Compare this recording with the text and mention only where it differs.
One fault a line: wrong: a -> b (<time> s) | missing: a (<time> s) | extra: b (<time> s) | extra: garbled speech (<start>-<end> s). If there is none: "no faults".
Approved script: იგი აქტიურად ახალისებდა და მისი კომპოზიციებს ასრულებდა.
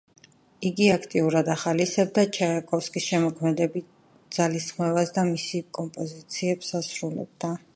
extra: ჩაიკოვსკის შემოქმედებით ძალისხმევას (2.4 s)